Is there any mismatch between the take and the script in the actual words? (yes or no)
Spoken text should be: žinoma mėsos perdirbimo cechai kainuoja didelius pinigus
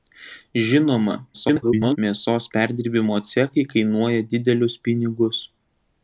yes